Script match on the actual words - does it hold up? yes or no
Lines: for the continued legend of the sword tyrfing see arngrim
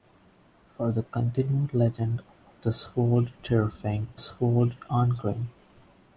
no